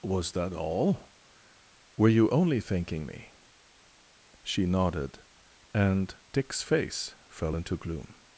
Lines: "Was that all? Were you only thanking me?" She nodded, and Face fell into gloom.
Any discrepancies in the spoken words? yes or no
yes